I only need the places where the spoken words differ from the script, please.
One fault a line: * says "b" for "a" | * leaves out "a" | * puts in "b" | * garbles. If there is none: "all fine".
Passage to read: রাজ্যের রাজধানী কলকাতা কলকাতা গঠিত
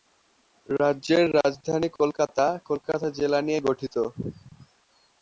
* puts in "জেলা নিয়ে"